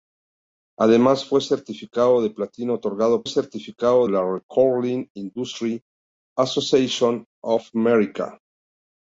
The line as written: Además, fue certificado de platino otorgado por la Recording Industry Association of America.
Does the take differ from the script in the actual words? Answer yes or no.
yes